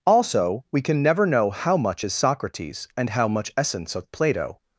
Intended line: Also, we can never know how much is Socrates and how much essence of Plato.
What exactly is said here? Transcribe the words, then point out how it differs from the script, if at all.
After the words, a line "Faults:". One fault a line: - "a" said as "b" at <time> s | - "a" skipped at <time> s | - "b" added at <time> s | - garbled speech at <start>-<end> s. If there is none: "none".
Also, we can never know how much is Socrates and how much essence of Plato.
Faults:
none